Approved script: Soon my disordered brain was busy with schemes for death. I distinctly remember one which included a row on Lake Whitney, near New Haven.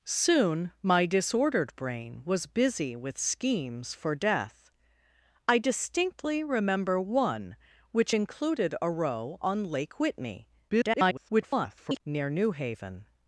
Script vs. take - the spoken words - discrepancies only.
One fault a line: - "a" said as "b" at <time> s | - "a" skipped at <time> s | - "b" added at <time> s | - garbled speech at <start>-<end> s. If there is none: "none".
- garbled speech at 10.7-12.0 s